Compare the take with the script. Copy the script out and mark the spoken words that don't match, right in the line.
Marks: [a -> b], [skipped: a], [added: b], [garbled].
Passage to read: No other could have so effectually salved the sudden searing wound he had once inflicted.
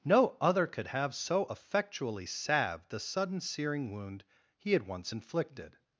No other could have so effectually salved the sudden searing wound he had once inflicted.